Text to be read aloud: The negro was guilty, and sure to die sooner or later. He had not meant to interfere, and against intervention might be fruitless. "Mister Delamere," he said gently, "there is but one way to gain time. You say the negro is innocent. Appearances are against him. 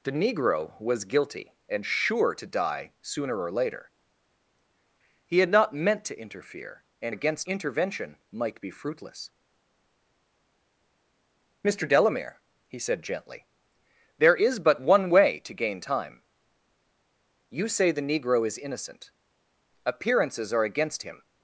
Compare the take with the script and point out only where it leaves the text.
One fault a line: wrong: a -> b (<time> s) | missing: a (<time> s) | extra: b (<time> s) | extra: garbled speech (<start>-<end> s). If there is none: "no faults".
no faults